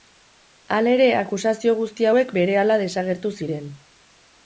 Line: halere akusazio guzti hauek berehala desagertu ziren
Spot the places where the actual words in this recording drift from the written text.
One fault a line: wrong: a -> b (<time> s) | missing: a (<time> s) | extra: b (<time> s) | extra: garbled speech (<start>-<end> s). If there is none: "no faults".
no faults